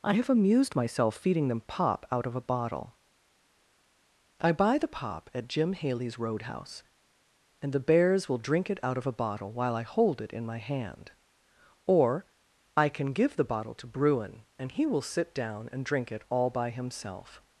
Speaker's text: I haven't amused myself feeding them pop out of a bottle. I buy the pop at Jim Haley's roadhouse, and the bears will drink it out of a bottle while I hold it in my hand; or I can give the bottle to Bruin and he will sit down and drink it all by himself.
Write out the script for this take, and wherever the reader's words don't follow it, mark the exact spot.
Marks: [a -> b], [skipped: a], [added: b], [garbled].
I [haven't -> have] amused myself feeding them pop out of a bottle. I buy the pop at Jim Haley's roadhouse, and the bears will drink it out of a bottle while I hold it in my hand; or I can give the bottle to Bruin and he will sit down and drink it all by himself.